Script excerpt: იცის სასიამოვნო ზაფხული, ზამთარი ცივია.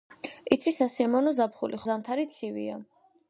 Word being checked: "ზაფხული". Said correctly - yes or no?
yes